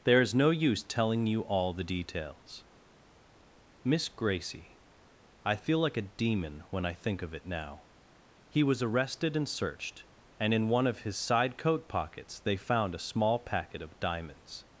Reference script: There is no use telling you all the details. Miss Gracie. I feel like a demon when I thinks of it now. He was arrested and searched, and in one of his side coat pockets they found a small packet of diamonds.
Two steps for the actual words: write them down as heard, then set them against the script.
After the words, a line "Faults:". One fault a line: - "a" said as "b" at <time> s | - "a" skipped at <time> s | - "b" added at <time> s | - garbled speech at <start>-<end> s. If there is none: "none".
There is no use telling you all the details. Miss Gracie. I feel like a demon when I think of it now. He was arrested and searched, and in one of his side coat pockets they found a small packet of diamonds.
Faults:
- "thinks" said as "think" at 6.9 s